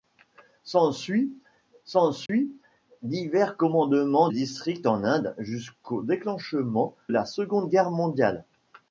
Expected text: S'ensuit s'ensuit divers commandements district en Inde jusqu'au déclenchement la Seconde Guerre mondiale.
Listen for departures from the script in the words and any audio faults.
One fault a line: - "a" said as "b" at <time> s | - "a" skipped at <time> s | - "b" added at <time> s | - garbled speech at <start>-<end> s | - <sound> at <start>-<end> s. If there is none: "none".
- dropout at 2.3-2.3 s